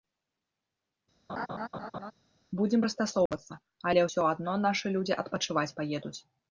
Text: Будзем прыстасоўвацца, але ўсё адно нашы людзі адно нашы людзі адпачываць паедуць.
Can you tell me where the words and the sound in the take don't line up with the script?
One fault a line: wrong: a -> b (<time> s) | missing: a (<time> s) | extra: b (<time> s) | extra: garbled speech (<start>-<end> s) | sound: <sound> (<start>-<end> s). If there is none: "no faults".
sound: laugh (1.3-2.1 s)
sound: dropout (3.3-3.3 s)
missing: адно нашы людзі (5.2 s)